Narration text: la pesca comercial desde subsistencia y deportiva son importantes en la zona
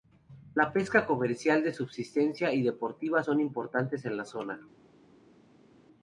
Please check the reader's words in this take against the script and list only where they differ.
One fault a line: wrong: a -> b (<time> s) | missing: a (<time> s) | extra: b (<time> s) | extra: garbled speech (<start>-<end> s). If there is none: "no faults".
wrong: desde -> de (1.6 s)